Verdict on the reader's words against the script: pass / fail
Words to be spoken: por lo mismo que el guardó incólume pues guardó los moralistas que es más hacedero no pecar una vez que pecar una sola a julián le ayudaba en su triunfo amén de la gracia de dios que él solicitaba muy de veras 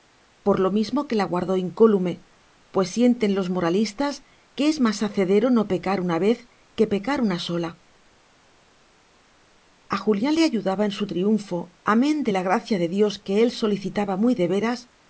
fail